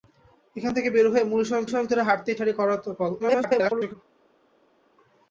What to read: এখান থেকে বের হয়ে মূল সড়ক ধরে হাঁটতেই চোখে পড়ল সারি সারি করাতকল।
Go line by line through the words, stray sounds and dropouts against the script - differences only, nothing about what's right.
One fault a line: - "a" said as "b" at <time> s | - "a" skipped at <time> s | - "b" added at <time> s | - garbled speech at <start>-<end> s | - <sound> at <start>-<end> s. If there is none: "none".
- "সড়ক" added at 1.7 s
- "চোখে পড়ল সারি" skipped at 2.4 s
- garbled speech at 3.2-3.9 s